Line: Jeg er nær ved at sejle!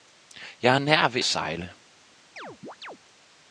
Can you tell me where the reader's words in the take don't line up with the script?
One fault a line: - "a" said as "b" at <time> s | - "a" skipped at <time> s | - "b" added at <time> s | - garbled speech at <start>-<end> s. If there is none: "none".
- "at" skipped at 1.2 s